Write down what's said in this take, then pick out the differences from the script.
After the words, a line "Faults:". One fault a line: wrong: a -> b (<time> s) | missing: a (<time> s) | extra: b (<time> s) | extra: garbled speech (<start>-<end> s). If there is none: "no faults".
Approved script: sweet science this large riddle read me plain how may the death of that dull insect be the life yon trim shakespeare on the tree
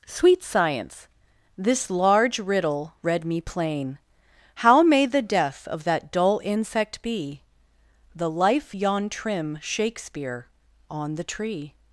sweet science this large riddle read me plain how may the death of that dull insect be the life yon trim shakespeare on the tree
Faults:
no faults